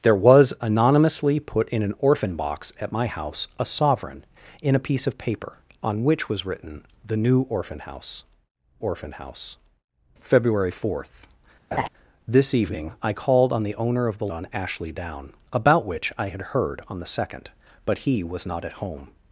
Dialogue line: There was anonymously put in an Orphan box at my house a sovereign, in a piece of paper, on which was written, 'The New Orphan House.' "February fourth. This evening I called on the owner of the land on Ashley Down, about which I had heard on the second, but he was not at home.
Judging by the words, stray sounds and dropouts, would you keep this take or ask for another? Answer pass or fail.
fail